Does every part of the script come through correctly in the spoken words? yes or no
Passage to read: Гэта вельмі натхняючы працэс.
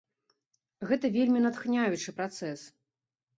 yes